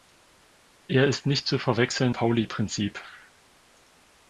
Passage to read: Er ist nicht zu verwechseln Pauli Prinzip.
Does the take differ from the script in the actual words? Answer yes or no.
no